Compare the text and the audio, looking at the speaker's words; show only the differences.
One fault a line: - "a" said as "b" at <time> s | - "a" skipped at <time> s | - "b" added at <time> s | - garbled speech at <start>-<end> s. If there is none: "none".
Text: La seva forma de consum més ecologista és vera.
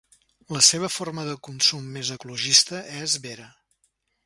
none